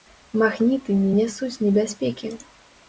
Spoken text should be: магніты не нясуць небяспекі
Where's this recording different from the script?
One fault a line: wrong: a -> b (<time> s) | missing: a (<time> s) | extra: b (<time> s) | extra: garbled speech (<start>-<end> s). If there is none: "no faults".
no faults